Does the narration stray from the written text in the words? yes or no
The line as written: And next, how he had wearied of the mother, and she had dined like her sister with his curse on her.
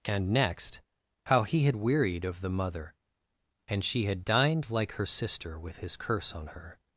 no